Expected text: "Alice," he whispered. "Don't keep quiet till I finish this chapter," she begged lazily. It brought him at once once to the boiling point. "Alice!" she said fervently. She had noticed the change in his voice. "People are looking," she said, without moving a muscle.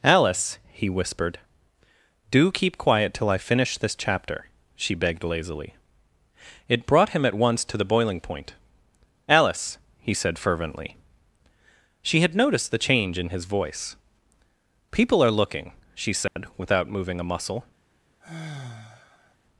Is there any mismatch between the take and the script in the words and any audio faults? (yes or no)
yes